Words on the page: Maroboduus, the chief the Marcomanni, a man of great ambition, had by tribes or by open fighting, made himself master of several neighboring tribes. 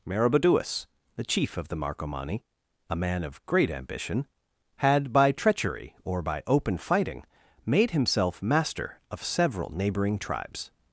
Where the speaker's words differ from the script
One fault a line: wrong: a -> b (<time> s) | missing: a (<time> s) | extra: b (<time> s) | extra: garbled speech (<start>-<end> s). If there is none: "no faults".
extra: of (1.6 s)
wrong: tribes -> treachery (5.3 s)